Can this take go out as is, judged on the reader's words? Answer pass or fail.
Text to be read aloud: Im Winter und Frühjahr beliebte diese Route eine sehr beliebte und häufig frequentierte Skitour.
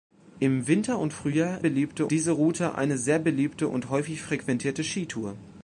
pass